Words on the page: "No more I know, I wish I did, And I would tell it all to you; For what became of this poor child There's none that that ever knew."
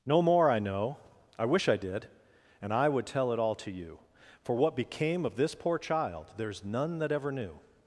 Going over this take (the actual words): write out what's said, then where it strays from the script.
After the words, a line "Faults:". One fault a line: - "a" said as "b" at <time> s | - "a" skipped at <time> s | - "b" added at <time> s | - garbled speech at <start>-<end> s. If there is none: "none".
"No more I know, I wish I did, And I would tell it all to you; For what became of this poor child There's none that ever knew."
Faults:
- "that" skipped at 7.1 s